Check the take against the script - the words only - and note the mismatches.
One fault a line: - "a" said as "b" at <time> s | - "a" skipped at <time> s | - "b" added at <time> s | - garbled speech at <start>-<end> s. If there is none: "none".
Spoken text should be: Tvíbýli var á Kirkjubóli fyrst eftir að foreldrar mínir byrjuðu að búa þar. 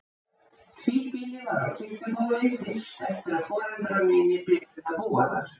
none